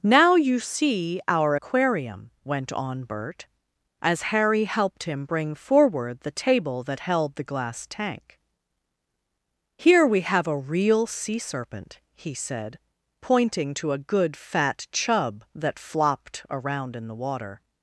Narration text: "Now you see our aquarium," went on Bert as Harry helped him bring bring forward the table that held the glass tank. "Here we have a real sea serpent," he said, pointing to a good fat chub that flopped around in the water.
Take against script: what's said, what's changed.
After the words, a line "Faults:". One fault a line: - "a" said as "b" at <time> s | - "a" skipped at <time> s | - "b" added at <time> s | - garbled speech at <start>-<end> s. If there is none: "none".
"Now you see our aquarium," went on Bert as Harry helped him bring forward the table that held the glass tank. "Here we have a real sea serpent," he said, pointing to a good fat chub that flopped around in the water.
Faults:
- "bring" skipped at 5.6 s